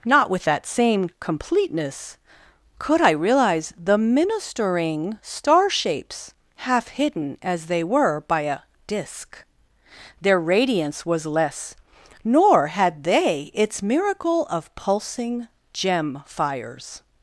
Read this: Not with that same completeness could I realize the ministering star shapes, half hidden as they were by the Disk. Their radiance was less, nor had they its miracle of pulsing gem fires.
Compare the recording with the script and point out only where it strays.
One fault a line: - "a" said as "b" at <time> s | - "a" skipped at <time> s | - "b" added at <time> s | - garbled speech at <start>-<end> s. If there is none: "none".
- "the" said as "a" at 8.4 s